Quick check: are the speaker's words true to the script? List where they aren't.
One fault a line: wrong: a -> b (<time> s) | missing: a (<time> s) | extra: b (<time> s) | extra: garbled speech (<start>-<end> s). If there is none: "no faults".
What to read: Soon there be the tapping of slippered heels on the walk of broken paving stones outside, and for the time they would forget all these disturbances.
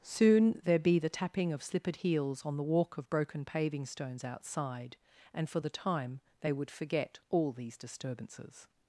no faults